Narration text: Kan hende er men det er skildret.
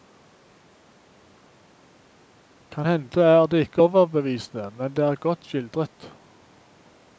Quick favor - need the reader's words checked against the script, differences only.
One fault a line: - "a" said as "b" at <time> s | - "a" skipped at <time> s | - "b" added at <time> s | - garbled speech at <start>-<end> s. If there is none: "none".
- "det ikke overbevisende" added at 3.5 s
- "godt" added at 5.1 s